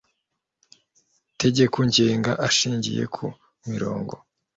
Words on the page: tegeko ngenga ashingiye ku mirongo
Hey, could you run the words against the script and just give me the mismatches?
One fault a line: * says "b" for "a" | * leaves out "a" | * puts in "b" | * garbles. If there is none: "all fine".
all fine